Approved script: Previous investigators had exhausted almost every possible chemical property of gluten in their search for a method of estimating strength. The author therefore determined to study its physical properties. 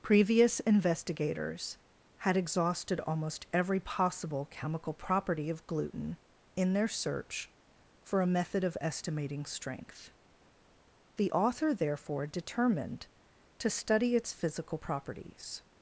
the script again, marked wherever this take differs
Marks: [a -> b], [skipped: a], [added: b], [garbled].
Previous investigators had exhausted almost every possible chemical property of gluten in their search for a method of estimating strength. The author therefore determined to study its physical properties.